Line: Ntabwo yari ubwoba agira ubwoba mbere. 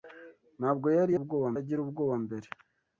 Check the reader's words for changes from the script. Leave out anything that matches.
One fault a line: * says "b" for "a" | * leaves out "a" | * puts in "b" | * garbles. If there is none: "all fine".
all fine